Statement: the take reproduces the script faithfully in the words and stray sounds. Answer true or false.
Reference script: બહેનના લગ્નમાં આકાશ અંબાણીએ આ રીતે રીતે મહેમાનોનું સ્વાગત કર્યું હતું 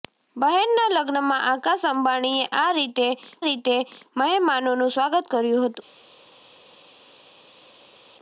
true